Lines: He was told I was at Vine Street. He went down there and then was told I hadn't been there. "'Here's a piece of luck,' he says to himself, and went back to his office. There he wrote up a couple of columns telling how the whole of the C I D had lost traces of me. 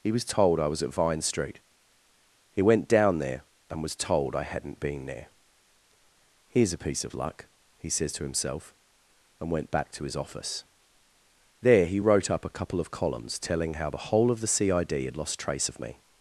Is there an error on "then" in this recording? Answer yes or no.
yes